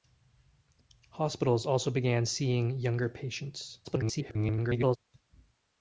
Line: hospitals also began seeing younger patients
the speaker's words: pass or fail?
fail